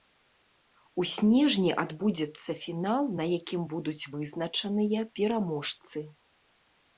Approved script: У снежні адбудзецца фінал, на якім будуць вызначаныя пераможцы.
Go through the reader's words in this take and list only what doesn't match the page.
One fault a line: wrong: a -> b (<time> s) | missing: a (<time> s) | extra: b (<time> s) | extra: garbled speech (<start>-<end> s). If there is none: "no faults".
no faults